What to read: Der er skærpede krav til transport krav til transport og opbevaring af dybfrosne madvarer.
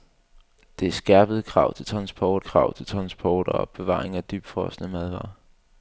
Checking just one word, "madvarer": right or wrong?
right